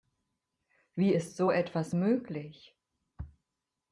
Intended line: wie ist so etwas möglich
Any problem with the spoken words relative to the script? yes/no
no